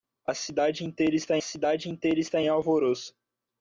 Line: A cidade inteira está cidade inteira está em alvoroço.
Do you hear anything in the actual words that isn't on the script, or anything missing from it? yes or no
no